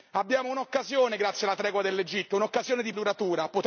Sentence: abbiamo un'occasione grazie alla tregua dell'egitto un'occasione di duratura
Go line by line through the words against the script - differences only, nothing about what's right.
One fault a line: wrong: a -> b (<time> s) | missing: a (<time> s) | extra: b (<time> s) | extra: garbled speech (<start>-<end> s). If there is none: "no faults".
no faults